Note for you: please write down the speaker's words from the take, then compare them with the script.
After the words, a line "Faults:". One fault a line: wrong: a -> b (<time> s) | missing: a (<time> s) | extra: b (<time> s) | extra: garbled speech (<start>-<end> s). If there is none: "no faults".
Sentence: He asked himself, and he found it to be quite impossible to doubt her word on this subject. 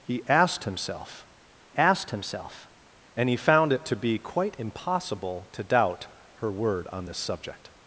He asked himself asked himself, and he found it to be quite impossible to doubt her word on this subject.
Faults:
extra: asked himself (1.8 s)